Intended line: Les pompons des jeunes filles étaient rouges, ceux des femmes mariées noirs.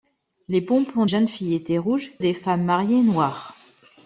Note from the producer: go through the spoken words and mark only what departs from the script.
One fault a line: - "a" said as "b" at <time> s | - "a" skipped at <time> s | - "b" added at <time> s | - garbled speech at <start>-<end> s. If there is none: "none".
- "des" skipped at 1.1 s
- "ceux" skipped at 2.1 s